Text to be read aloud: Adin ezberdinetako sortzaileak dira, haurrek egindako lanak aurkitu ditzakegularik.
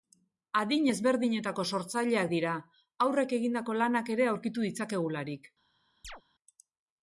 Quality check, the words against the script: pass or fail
fail